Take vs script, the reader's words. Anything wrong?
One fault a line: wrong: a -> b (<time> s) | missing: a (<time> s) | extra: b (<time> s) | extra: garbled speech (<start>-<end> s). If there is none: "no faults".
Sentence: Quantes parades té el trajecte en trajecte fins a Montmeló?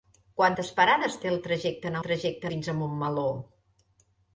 no faults